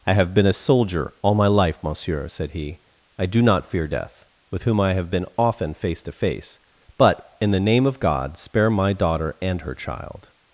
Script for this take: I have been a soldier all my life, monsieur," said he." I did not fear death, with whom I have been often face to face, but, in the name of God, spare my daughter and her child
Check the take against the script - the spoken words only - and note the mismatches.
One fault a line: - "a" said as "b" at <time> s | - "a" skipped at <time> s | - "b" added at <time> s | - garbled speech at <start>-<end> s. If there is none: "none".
- "did" said as "do" at 3.3 s